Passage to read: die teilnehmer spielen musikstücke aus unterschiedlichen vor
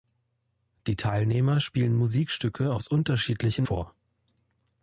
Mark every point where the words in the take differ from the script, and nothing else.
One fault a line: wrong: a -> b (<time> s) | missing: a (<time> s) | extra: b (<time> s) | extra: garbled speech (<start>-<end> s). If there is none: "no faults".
no faults